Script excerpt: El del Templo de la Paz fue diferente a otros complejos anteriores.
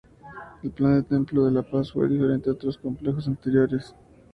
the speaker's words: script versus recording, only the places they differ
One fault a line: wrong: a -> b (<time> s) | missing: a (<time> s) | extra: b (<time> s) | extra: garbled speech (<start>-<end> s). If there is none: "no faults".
extra: plan (0.7 s)